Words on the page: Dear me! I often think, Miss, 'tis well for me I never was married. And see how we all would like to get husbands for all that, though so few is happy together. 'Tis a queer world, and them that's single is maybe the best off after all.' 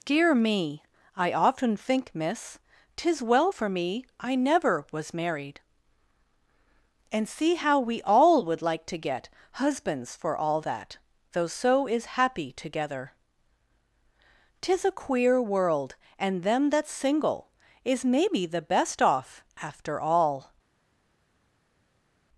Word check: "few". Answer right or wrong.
wrong